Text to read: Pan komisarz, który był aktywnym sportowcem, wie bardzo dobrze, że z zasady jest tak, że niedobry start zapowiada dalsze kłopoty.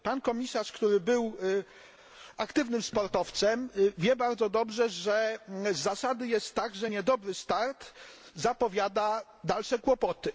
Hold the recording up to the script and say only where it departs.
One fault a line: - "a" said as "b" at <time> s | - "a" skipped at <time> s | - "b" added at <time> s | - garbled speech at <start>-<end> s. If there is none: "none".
none